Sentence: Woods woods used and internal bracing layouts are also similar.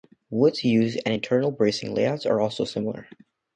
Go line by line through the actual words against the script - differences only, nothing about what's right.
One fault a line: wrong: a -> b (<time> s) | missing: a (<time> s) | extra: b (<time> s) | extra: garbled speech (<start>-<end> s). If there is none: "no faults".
missing: woods (0.6 s)